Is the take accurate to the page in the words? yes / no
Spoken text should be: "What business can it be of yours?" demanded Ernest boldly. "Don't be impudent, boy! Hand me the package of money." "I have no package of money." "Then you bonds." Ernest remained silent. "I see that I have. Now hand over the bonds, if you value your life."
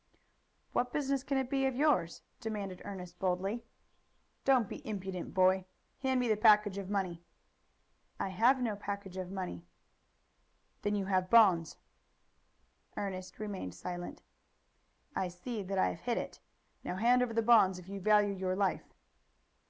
no